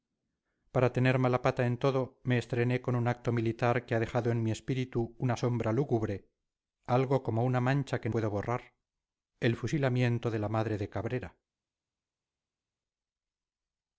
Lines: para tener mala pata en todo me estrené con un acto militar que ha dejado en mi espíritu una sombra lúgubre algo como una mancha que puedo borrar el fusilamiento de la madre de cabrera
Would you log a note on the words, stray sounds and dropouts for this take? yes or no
no